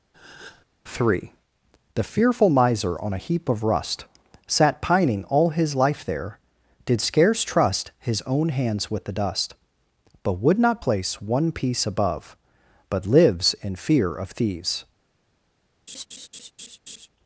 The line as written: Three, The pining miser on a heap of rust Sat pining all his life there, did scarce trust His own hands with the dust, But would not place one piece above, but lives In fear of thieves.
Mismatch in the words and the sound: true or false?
true